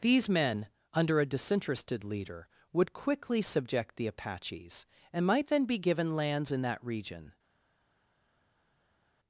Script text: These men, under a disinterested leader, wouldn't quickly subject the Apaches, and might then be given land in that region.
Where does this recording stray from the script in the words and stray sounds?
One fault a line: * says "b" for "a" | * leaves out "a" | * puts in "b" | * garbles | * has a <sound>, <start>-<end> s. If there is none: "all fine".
* says "would" for "wouldn't"
* says "lands" for "land"